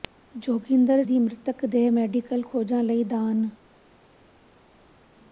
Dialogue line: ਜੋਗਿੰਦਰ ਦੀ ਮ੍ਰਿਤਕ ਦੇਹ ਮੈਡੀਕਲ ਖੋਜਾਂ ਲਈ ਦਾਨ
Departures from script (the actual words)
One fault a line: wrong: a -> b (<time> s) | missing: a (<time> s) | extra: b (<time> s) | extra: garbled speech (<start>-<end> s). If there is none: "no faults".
no faults